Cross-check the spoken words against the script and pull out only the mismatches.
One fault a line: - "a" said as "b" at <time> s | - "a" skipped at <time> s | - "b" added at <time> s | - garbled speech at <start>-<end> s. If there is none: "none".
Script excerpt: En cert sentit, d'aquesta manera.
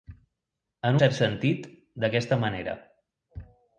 none